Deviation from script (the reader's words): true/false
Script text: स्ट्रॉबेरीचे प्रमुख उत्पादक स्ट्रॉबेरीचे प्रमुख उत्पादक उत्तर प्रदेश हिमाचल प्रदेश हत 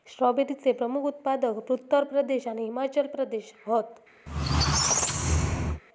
true